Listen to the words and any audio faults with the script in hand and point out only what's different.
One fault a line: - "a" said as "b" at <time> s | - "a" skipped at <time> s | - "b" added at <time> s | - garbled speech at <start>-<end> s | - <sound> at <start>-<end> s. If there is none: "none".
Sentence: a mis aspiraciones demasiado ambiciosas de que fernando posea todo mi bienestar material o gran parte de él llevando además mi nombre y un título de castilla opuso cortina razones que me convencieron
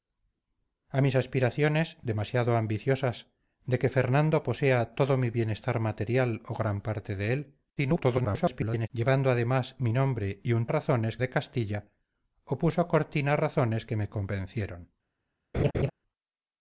- garbled speech at 7.8-8.9 s
- "título" said as "razones" at 10.7 s
- laugh at 15.5-15.9 s